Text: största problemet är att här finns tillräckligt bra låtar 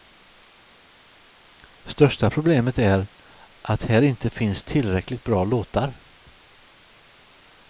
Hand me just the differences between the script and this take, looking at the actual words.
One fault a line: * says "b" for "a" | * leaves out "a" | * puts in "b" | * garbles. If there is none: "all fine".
* puts in "inte"